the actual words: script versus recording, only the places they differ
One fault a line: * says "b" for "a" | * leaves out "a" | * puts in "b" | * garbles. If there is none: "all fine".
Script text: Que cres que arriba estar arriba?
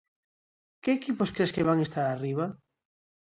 * puts in "equipos"
* says "van" for "arriba"